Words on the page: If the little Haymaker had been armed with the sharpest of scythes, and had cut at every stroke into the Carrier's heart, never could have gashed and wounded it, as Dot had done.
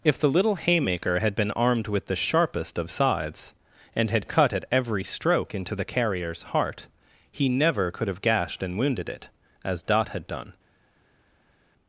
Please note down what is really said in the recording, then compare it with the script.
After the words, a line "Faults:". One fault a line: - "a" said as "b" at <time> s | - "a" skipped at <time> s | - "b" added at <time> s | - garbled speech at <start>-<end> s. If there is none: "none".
If the little Haymaker had been armed with the sharpest of scythes, and had cut at every stroke into the Carrier's heart, he never could have gashed and wounded it, as Dot had done.
Faults:
- "he" added at 7.3 s